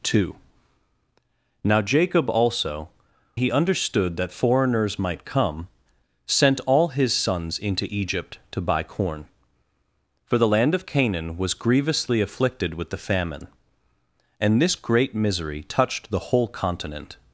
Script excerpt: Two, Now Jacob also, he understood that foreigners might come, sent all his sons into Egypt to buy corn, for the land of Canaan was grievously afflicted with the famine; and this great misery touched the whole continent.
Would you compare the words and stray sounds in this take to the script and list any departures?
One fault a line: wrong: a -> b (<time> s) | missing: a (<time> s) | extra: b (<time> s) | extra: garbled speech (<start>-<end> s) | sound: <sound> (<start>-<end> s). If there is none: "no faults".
no faults